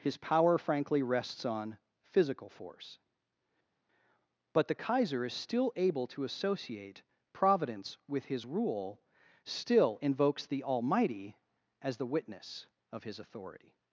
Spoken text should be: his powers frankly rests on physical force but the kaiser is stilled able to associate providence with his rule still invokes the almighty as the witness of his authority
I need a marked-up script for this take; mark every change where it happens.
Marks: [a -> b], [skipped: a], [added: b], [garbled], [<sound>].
his [powers -> power] frankly rests on physical force but the kaiser is [stilled -> still] able to associate providence with his rule still invokes the almighty as the witness of his authority